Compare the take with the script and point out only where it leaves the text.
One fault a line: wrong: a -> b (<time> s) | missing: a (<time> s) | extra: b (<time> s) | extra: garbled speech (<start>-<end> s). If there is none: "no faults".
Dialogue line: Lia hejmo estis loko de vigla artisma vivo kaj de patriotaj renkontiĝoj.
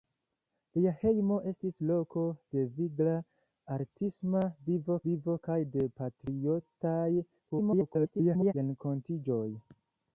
extra: vivo (5.1 s)
extra: garbled speech (7.5-8.5 s)